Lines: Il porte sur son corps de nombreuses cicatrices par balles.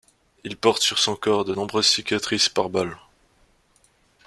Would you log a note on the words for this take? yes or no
no